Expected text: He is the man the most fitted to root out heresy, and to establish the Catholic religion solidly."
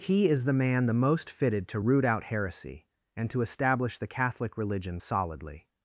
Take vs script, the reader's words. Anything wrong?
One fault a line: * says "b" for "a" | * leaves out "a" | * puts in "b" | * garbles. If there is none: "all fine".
all fine